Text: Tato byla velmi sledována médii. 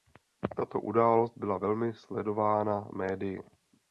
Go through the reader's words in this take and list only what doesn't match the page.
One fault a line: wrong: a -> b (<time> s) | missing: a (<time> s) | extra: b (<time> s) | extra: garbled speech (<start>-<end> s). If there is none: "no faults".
extra: událost (0.8 s)